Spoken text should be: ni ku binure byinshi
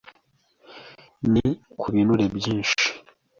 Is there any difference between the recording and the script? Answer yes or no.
no